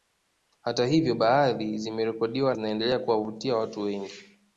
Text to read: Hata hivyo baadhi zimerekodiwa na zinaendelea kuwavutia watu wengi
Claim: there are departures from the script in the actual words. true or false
true